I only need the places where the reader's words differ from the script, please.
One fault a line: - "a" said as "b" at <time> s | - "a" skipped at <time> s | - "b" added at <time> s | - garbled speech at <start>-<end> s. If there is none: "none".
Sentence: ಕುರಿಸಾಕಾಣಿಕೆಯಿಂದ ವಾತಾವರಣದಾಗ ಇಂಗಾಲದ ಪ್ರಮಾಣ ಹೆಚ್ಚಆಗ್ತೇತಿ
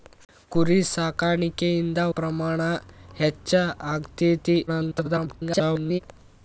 - "ವಾತಾವರಣದಾಗ ಇಂಗಾಲದ" skipped at 2.0 s
- garbled speech at 4.7-6.0 s